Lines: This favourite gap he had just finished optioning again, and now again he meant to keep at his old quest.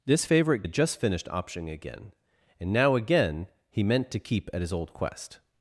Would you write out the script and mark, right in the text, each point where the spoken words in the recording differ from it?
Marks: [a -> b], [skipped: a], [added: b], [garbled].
This favourite [skipped: gap he] had just finished optioning again, and now again he meant to keep at his old quest.